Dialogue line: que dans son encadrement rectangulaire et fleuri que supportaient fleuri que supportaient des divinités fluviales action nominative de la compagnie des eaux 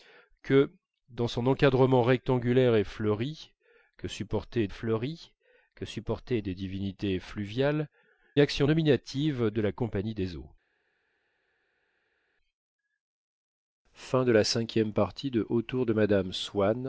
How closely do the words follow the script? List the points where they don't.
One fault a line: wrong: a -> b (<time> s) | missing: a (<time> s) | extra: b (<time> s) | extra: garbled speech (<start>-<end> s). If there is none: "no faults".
no faults